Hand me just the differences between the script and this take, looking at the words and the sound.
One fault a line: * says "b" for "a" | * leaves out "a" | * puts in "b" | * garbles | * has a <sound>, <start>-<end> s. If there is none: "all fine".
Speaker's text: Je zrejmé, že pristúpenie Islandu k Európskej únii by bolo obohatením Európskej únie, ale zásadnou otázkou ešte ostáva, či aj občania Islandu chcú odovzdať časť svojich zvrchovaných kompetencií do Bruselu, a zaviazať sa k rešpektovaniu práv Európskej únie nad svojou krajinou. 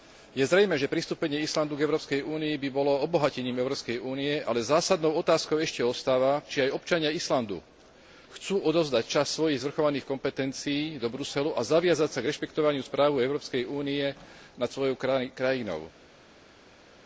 all fine